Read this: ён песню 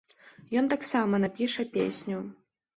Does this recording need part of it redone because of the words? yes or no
yes